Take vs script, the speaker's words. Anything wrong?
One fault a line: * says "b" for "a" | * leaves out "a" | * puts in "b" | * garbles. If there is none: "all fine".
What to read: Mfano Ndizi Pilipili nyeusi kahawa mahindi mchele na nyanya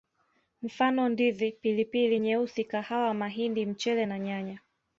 all fine